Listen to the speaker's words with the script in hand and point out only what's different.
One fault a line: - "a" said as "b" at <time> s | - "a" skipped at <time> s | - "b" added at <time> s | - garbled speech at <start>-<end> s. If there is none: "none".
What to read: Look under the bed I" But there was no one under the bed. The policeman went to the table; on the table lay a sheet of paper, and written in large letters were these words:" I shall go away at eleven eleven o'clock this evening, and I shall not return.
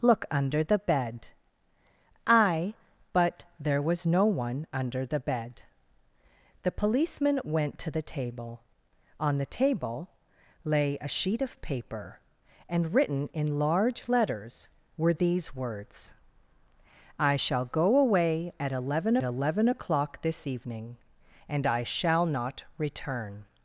none